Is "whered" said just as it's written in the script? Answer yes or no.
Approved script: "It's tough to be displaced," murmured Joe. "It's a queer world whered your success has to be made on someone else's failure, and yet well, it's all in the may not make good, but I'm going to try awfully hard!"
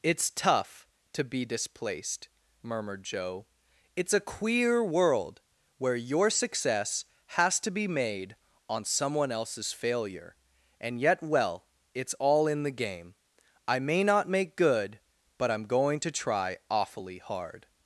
no